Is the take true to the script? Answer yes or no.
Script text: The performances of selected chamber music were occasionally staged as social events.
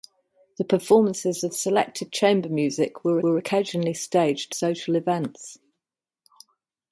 no